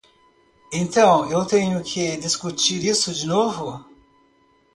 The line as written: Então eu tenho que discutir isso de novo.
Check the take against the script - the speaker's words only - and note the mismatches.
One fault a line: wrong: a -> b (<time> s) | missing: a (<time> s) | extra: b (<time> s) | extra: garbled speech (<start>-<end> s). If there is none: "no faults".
no faults